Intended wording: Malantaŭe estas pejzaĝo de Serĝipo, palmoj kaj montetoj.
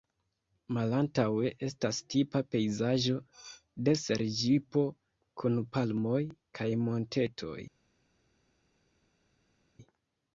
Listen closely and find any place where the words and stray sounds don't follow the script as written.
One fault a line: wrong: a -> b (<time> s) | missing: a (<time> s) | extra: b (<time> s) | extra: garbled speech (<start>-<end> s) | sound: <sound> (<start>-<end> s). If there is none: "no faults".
extra: tipa (2.1 s)
extra: kun (5.4 s)